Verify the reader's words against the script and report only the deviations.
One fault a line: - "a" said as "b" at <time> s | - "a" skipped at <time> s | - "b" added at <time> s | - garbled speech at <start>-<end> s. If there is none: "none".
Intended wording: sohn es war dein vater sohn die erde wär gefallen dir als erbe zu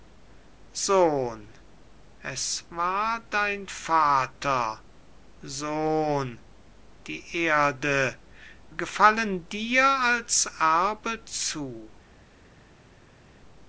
- "wär" skipped at 8.2 s